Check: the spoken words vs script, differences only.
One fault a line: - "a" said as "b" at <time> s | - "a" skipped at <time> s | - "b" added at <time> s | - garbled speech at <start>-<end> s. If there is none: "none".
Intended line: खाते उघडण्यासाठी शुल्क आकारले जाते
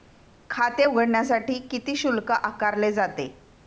- "किती" added at 1.7 s